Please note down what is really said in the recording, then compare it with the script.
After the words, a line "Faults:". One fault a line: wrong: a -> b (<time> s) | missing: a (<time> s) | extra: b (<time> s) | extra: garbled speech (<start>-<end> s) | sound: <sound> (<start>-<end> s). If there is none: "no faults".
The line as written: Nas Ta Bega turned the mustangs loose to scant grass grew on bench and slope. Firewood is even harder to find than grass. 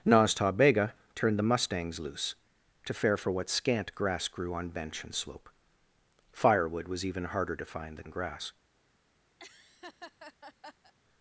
Nas Ta Bega turned the mustangs loose to fare for what scant grass grew on bench and slope. Firewood was even harder to find than grass.
Faults:
extra: fare for what (2.9 s)
wrong: is -> was (6.9 s)
sound: laugh (9.4-10.9 s)